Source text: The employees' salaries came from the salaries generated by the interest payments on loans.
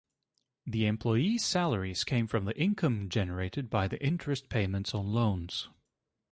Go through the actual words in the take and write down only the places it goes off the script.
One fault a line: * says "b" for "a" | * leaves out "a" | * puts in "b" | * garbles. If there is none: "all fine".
* says "income" for "salaries"